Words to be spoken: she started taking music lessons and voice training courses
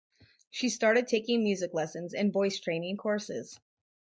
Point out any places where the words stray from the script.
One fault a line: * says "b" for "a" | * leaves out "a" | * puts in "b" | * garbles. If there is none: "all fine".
all fine